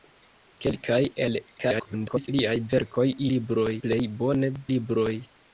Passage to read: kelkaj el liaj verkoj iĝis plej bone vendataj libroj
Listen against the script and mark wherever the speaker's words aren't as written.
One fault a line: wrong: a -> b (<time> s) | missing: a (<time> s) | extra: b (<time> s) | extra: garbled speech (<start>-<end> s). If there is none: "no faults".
extra: garbled speech (1.6-2.3 s)
wrong: iĝis -> libroj (3.3 s)
missing: vendataj (4.5 s)